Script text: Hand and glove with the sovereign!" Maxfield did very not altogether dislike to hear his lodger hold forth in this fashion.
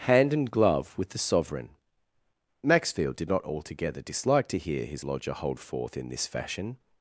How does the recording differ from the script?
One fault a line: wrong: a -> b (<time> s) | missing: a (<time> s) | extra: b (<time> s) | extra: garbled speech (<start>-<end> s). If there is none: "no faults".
missing: very (3.3 s)